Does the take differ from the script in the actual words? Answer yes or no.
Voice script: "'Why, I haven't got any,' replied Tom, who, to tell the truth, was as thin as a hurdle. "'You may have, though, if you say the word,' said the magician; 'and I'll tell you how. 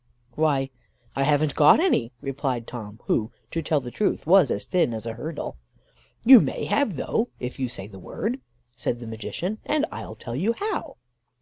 no